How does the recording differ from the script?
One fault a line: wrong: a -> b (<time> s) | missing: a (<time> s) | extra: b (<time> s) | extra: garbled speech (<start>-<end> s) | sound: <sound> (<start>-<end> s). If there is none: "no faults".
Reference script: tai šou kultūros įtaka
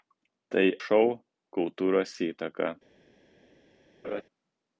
sound: laugh (4.0-4.2 s)